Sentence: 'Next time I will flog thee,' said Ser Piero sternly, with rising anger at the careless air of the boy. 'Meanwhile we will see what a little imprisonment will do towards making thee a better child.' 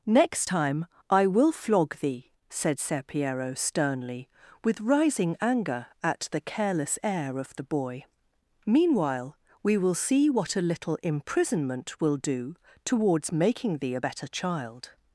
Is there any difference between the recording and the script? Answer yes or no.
no